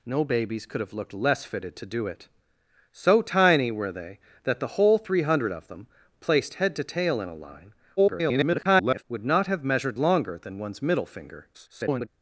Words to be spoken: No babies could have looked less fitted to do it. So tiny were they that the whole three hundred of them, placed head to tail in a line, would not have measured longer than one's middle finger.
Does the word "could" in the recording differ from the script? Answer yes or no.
no